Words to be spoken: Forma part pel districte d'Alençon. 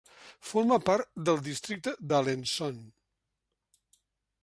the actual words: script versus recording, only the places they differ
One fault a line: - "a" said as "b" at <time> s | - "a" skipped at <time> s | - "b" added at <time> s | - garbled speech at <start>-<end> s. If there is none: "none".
- "pel" said as "del" at 1.3 s